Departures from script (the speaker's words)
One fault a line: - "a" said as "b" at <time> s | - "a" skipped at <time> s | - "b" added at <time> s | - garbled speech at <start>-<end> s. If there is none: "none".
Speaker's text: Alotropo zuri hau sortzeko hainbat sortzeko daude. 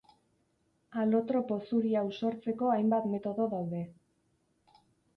- "sortzeko" said as "metodo" at 3.1 s